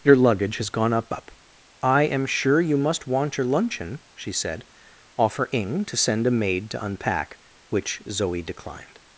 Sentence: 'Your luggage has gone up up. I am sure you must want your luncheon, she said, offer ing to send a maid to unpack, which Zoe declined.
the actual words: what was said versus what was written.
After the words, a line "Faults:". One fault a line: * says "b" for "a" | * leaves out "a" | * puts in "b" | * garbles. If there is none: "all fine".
'Your luggage has gone up up. I am sure you must want your luncheon, she said, offer ing to send a maid to unpack, which Zoe declined.
Faults:
all fine